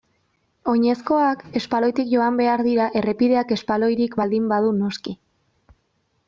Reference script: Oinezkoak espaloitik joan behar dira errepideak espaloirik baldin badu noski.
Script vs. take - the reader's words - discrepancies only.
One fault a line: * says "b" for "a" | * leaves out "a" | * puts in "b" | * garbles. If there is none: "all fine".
all fine